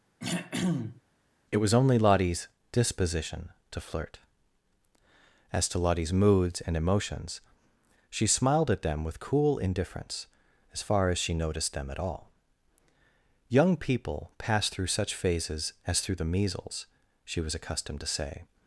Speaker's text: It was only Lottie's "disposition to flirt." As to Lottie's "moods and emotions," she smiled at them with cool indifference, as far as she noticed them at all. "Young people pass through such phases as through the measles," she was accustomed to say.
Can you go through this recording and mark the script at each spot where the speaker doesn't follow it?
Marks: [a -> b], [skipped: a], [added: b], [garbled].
It was only Lottie's "disposition to flirt." As to Lottie's "moods and emotions," she smiled at them with cool indifference, as far as she noticed them at all. "Young people pass through such phases as through the measles," she was accustomed to say.